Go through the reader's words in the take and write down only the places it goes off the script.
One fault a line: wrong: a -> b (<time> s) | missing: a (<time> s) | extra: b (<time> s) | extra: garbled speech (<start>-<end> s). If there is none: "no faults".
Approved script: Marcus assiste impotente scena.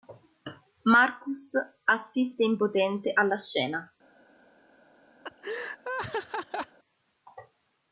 extra: alla (3.1 s)